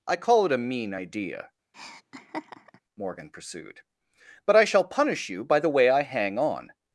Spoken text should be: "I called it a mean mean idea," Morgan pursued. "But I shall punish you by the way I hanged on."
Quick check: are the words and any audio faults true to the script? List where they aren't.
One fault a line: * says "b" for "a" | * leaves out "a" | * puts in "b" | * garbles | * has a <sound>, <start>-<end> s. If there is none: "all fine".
* says "call" for "called"
* leaves out "mean"
* has a laugh, 1.7-2.8 s
* says "hang" for "hanged"